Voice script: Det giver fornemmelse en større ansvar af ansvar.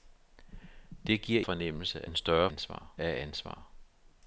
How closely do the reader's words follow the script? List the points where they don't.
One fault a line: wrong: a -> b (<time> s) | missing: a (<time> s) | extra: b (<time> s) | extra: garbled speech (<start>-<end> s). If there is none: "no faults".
no faults